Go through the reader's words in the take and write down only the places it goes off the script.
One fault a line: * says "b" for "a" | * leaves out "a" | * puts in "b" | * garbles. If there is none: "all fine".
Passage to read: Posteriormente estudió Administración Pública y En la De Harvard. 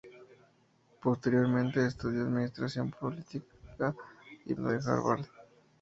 all fine